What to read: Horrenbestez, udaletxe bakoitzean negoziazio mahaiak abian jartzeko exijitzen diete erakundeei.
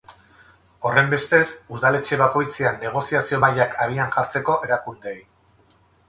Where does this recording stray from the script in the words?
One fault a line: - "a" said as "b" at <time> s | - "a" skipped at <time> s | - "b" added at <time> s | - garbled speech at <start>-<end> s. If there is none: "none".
- "exijitzen diete" skipped at 4.6 s